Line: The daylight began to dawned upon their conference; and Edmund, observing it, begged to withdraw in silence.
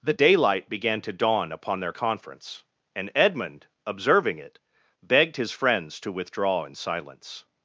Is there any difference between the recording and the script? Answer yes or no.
yes